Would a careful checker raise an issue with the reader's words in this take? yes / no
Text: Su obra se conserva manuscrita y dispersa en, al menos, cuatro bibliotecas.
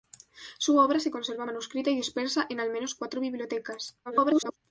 yes